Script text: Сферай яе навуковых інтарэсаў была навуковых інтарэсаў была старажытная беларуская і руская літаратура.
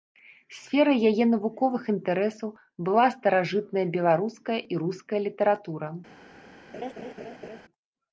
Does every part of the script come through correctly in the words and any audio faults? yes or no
no